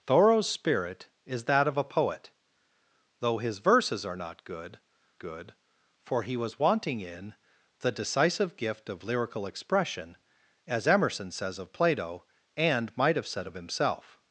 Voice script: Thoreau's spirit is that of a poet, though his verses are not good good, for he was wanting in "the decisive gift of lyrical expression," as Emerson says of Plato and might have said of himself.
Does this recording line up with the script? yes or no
yes